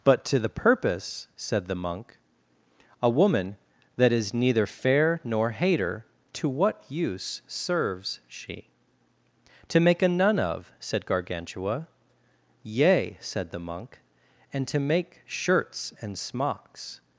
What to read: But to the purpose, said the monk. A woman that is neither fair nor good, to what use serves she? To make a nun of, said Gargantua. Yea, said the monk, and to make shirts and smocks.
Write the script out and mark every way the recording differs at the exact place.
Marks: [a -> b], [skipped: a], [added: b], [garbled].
But to the purpose, said the monk. A woman that is neither fair nor [good, -> hater] to what use serves she? To make a nun of, said Gargantua. Yea, said the monk, and to make shirts and smocks.